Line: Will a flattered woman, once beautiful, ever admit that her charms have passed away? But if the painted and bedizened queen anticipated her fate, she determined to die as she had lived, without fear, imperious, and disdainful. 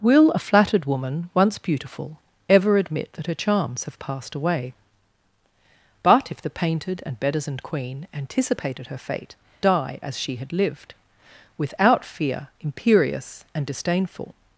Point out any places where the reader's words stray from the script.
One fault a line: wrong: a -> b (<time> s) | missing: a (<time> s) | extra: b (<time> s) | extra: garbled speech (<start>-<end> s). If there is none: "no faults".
missing: she determined to (9.4 s)